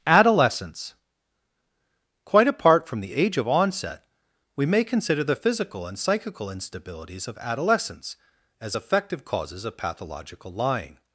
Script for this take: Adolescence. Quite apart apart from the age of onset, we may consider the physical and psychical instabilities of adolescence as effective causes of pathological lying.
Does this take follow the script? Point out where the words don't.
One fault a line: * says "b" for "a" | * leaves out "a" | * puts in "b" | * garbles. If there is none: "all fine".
* leaves out "apart"